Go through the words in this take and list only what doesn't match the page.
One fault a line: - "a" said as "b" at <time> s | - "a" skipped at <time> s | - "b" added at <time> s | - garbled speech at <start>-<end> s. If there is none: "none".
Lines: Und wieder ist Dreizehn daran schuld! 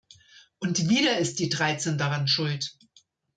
- "die" added at 1.4 s